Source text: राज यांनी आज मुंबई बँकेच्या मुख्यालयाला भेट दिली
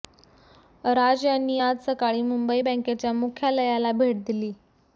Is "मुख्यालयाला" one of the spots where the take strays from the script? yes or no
no